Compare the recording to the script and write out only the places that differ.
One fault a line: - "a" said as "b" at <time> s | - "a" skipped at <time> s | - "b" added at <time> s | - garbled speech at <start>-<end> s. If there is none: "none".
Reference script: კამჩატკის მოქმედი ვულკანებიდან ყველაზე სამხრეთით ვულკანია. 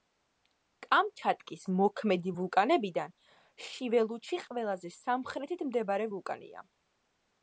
- "შიველუჩი" added at 3.7 s
- "მდებარე" added at 5.7 s